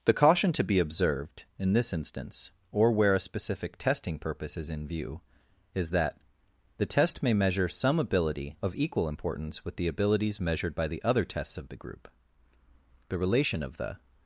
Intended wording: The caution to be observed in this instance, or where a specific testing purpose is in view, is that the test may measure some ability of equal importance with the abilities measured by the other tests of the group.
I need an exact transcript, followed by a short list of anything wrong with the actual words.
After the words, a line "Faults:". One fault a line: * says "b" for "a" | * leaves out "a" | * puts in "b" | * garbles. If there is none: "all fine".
The caution to be observed in this instance, or where a specific testing purpose is in view, is that the test may measure some ability of equal importance with the abilities measured by the other tests of the group. The relation of the
Faults:
* puts in "The relation of the"